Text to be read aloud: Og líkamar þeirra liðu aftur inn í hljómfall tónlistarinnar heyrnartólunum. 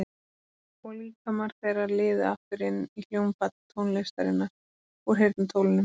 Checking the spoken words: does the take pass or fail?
fail